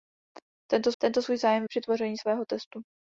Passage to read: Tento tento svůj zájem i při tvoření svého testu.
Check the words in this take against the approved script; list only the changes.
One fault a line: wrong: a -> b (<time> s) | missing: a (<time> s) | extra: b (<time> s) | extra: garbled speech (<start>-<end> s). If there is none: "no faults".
no faults